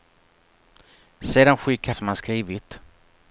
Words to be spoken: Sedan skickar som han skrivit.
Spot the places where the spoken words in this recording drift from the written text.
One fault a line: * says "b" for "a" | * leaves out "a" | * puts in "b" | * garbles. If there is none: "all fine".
all fine